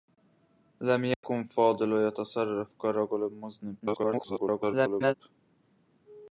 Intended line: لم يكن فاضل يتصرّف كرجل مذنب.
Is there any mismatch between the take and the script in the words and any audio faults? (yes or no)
yes